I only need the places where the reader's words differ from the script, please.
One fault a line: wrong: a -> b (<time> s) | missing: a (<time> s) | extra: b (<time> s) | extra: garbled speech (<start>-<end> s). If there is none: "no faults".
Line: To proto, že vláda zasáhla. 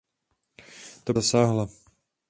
missing: proto že vláda (1.1 s)